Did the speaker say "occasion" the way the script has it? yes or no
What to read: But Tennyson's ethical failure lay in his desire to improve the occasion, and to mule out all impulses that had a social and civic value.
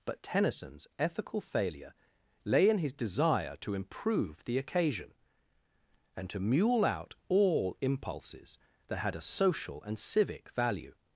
yes